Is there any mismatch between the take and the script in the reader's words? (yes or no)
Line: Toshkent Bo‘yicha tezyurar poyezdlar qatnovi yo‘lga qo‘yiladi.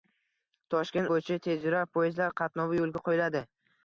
no